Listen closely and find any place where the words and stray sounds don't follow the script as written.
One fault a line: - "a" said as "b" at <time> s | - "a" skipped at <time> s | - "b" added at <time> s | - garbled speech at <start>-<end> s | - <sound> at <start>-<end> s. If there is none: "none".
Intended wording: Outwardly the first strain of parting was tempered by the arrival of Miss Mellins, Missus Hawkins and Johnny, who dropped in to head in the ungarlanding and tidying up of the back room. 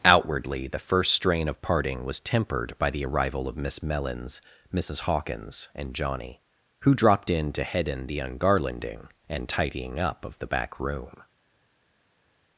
none